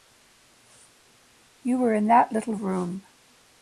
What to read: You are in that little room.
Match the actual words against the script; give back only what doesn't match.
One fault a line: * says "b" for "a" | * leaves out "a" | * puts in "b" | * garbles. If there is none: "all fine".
* says "were" for "are"